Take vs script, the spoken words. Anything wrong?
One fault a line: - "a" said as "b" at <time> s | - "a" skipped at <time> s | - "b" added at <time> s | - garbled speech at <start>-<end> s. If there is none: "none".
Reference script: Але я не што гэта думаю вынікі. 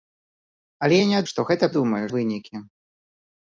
none